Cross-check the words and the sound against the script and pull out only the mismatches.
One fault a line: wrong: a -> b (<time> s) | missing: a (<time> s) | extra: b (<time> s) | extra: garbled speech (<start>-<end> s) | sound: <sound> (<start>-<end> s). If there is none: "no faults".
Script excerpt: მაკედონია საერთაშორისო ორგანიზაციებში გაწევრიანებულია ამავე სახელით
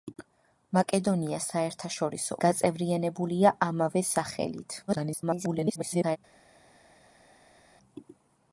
missing: ორგანიზაციებში (2.4 s)
extra: garbled speech (4.9-6.2 s)